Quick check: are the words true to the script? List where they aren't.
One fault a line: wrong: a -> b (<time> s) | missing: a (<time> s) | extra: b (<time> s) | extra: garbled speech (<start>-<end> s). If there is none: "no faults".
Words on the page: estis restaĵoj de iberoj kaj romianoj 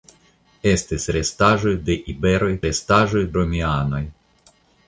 wrong: kaj -> restaĵoj (2.7 s)